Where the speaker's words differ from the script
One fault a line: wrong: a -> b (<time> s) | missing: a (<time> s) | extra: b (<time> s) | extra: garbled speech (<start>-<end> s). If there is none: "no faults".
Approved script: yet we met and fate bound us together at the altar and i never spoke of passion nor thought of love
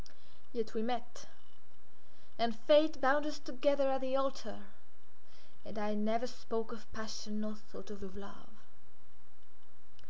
extra: of (8.0 s)